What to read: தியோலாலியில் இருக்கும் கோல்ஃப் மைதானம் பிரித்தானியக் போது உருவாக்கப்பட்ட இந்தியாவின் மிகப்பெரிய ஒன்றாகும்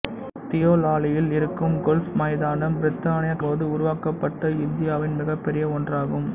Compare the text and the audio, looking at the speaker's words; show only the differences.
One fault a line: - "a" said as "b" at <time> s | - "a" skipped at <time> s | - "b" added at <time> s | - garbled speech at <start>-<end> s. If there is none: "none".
none